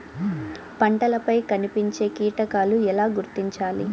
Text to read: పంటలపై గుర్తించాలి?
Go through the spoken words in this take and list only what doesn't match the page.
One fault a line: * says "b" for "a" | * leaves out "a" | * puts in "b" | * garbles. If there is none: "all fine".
* puts in "కనిపించే కీటకాలు ఎలా"